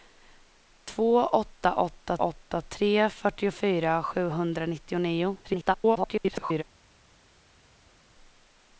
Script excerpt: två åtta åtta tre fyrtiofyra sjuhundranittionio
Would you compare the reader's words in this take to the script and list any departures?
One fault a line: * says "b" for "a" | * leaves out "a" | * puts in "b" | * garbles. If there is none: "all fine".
* puts in "åtta"
* garbles